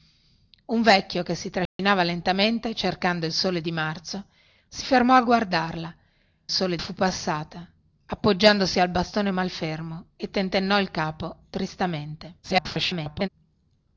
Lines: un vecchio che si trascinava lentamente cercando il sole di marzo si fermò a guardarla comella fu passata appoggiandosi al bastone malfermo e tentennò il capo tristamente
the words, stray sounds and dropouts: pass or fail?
fail